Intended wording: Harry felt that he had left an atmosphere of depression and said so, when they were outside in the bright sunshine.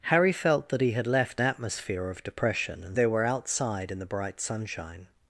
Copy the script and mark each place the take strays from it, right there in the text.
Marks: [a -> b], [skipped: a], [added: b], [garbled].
Harry felt that he had left [skipped: an] atmosphere of depression and [skipped: said so, when] they were outside in the bright sunshine.